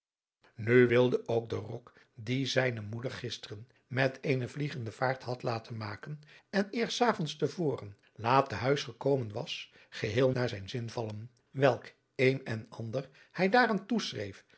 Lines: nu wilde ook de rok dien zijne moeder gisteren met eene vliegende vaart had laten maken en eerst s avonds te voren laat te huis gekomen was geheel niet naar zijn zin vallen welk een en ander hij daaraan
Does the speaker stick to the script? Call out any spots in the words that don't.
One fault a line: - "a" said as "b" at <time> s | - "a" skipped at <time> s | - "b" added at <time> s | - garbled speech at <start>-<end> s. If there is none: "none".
- "niet" skipped at 10.3 s